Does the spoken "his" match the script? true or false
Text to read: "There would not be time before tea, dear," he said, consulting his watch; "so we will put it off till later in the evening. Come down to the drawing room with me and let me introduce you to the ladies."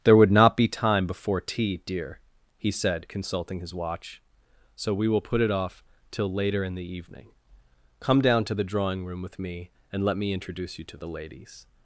true